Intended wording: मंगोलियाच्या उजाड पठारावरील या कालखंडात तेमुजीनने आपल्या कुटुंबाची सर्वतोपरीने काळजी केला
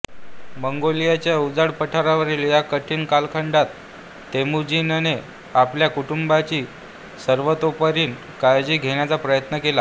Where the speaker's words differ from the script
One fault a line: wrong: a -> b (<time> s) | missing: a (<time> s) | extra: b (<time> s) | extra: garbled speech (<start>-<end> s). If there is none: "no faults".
extra: कठीण (2.6 s)
extra: घेण्याचा प्रयत्न (8.8 s)